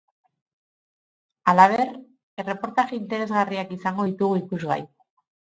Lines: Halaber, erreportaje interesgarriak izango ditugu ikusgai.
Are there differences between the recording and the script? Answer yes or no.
no